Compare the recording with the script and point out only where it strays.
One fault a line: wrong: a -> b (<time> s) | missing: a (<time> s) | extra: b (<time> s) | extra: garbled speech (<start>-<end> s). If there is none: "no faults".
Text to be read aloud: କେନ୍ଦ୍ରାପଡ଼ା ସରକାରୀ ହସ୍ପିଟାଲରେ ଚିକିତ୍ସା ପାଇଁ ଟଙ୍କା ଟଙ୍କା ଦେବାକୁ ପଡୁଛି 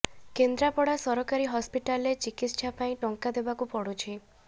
missing: ଟଙ୍କା (3.3 s)